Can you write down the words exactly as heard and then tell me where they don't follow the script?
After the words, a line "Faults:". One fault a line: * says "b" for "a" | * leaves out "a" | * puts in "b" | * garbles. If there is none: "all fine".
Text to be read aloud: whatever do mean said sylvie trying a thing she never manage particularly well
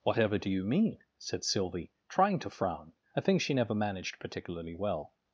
whatever do you mean said sylvie trying to frown a thing she never managed particularly well
Faults:
* puts in "you"
* puts in "to frown"
* says "managed" for "manage"